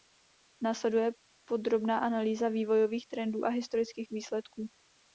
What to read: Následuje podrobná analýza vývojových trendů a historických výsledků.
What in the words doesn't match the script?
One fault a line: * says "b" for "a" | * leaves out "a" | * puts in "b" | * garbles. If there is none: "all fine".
all fine